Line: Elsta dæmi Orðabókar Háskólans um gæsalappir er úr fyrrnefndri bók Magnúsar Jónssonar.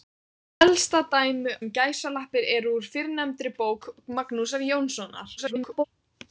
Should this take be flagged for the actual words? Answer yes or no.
yes